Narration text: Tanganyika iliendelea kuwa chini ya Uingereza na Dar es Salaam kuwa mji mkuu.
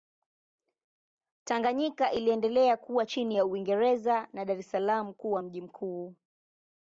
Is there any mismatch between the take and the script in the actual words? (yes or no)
no